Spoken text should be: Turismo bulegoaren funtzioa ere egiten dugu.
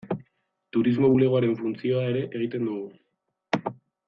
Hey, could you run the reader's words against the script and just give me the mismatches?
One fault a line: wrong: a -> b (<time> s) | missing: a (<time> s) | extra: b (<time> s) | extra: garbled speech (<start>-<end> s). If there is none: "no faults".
no faults